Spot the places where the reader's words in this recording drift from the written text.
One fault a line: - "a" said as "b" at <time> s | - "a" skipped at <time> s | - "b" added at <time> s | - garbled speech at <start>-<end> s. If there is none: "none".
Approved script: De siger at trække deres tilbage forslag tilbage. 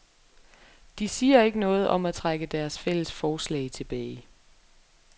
- "ikke noget om" added at 1.4 s
- "tilbage" said as "fælles" at 2.8 s